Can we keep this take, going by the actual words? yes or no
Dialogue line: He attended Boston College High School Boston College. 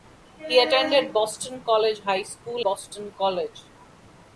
yes